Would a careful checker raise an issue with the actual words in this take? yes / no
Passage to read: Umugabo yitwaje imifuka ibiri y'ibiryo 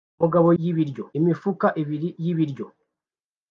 yes